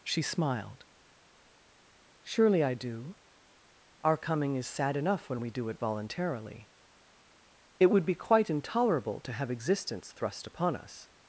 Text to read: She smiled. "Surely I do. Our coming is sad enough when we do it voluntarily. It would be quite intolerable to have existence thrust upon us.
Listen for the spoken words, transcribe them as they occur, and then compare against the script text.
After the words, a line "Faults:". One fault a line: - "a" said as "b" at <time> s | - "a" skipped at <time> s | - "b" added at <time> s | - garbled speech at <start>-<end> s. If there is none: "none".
She smiled. "Surely I do. Our coming is sad enough when we do it voluntarily. It would be quite intolerable to have existence thrust upon us.
Faults:
none